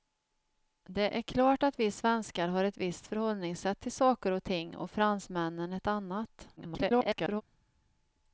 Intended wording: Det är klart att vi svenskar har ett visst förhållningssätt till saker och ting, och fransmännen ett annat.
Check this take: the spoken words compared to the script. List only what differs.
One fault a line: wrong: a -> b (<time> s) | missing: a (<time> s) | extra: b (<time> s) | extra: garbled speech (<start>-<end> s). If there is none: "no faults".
extra: garbled speech (6.6-7.4 s)